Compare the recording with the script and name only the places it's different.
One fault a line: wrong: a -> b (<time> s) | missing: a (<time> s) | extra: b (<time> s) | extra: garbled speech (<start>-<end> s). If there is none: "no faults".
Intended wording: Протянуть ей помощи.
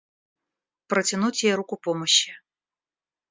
extra: руку (1.5 s)